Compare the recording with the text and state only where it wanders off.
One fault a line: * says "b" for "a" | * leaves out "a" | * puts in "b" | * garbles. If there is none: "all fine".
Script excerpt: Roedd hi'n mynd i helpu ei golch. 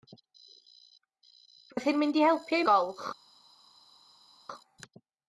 all fine